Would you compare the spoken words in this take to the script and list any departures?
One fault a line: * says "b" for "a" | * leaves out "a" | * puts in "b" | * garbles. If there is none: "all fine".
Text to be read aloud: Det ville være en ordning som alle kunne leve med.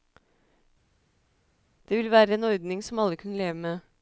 all fine